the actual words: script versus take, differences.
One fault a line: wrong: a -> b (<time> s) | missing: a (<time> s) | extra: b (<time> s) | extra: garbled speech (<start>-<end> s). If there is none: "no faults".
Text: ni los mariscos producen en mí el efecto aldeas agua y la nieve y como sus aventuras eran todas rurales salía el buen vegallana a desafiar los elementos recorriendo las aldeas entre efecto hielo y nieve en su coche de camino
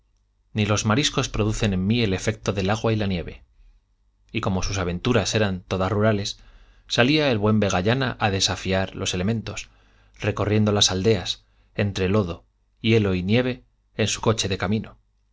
wrong: aldeas -> del (2.5 s)
wrong: efecto -> lodo (12.1 s)